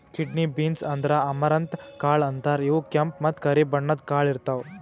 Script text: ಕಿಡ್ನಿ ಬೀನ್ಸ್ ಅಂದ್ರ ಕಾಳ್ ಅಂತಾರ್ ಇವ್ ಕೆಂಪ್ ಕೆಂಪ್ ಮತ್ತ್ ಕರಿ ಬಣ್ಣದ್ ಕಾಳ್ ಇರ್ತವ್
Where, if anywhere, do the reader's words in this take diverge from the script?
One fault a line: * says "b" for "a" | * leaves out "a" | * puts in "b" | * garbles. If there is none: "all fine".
* puts in "ಅಮರಂತ್"
* leaves out "ಕೆಂಪ್"